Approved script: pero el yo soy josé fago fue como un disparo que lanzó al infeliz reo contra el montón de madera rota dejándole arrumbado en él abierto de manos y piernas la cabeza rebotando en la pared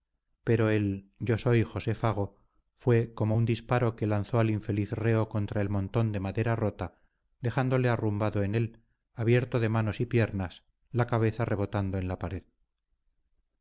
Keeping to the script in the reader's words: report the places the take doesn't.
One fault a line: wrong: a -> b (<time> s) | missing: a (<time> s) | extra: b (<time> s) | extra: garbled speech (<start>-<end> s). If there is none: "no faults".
no faults